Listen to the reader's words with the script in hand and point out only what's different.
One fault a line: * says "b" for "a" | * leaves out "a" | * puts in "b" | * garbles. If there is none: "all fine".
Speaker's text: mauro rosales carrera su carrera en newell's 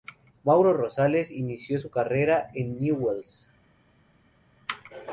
* says "inició" for "carrera"